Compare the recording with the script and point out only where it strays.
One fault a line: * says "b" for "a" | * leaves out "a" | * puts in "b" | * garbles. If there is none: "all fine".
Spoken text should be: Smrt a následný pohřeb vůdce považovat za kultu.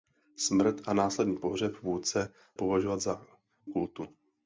all fine